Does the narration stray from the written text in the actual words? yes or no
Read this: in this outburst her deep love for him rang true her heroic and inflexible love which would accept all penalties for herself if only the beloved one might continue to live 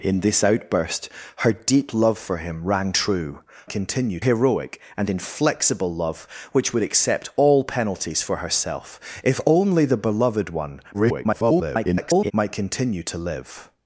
yes